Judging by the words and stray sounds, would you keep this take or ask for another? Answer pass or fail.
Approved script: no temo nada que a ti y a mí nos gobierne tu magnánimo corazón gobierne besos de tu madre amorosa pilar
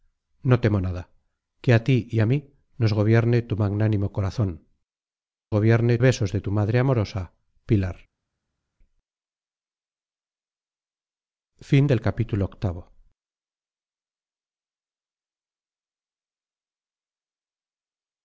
pass